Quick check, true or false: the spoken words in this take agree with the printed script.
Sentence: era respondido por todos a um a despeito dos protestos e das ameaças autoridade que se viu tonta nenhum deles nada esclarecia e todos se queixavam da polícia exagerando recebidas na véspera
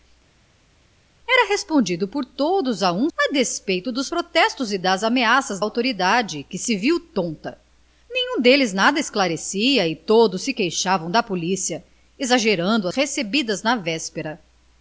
true